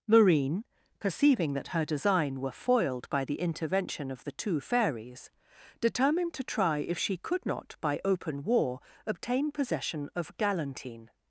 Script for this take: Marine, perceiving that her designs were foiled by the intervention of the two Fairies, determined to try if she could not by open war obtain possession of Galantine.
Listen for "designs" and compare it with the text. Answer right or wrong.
wrong